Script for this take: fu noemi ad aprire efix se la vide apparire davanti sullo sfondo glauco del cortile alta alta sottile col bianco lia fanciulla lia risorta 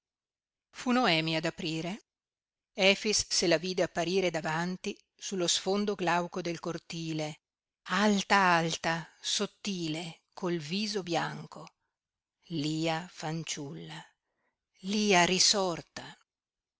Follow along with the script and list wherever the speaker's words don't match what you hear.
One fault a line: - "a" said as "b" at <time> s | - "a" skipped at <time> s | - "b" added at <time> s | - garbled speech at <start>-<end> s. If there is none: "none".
- "viso" added at 10.6 s